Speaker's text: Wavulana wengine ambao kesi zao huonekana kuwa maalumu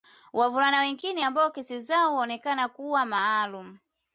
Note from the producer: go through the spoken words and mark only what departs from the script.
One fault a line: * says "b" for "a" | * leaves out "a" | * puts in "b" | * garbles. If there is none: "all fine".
all fine